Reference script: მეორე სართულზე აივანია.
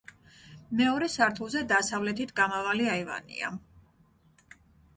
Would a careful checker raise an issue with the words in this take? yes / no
yes